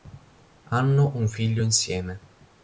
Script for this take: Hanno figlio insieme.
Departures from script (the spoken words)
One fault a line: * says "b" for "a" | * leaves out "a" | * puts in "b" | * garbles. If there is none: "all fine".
* puts in "un"